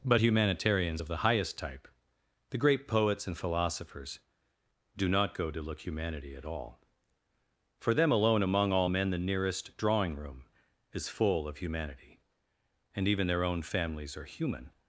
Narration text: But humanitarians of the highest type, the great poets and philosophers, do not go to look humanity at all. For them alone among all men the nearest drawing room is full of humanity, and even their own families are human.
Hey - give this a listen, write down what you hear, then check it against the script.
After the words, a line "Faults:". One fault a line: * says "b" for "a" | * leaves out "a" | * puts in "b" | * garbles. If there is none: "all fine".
But humanitarians of the highest type, the great poets and philosophers, do not go to look humanity at all. For them alone among all men the nearest drawing room is full of humanity, and even their own families are human.
Faults:
all fine